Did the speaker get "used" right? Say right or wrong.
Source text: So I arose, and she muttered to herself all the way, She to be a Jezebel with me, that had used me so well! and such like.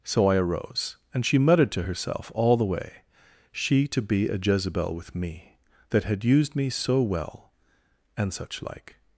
right